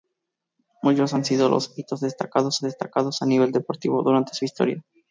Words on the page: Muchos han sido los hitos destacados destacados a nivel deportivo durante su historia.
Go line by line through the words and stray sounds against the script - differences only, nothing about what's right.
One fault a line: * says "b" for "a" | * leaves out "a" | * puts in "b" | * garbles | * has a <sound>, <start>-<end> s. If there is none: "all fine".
all fine